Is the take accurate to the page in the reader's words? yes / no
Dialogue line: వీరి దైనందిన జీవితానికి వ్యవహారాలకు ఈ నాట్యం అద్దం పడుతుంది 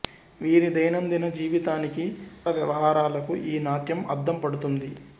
yes